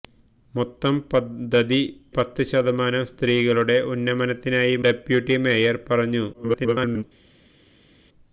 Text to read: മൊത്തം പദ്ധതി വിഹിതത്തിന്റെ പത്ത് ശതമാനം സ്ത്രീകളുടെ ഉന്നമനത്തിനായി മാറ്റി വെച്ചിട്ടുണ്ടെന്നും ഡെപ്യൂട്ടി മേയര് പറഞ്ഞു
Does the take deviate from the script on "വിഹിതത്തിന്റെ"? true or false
true